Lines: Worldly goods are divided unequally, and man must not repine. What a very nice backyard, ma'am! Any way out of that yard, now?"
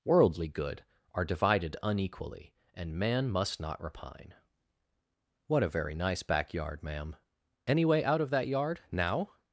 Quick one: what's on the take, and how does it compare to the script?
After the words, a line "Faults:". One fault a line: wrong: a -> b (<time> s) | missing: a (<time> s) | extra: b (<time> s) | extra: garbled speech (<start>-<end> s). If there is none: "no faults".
Worldly good are divided unequally, and man must not repine. What a very nice backyard, ma'am! Any way out of that yard, now?"
Faults:
wrong: goods -> good (0.5 s)